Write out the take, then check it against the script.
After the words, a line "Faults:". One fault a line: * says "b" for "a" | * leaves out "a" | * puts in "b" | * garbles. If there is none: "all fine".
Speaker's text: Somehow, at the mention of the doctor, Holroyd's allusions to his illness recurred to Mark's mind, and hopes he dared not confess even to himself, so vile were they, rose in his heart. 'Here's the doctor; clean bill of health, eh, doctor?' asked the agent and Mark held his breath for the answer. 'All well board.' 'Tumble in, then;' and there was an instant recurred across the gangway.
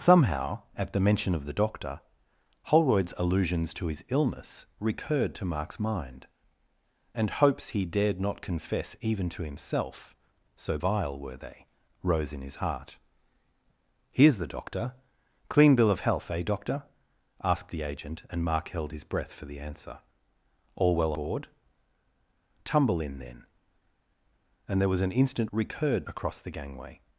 Somehow, at the mention of the doctor, Holroyd's allusions to his illness recurred to Mark's mind, and hopes he dared not confess even to himself, so vile were they, rose in his heart. 'Here's the doctor; clean bill of health, eh, doctor?' asked the agent and Mark held his breath for the answer. 'All well board.' 'Tumble in, then;' and there was an instant recurred across the gangway.
Faults:
all fine